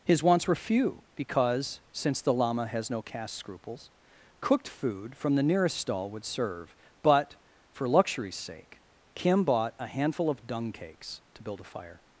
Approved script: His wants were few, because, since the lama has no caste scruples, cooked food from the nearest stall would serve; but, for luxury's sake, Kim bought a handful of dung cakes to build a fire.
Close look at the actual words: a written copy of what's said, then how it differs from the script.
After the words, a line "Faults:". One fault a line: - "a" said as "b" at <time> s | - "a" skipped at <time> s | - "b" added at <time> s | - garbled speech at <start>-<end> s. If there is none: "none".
His wants were few, because, since the lama has no caste scruples, cooked food from the nearest stall would serve; but, for luxury's sake, Kim bought a handful of dung cakes to build a fire.
Faults:
none